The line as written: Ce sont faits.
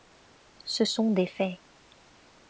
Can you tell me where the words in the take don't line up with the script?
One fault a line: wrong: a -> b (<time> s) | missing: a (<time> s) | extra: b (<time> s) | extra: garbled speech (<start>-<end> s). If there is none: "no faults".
extra: des (1.1 s)